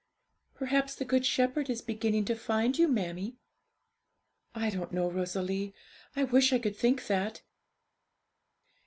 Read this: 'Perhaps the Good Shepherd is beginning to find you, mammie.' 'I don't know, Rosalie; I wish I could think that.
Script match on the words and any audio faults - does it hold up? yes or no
yes